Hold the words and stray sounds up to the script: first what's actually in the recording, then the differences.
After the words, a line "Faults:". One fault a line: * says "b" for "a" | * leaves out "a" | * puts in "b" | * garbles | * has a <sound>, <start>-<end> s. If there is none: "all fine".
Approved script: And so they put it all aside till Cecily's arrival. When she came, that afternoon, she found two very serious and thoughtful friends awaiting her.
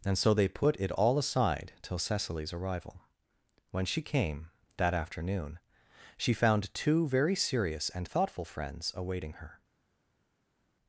And so they put it all aside till Cecily's arrival. When she came, that afternoon, she found two very serious and thoughtful friends awaiting her.
Faults:
all fine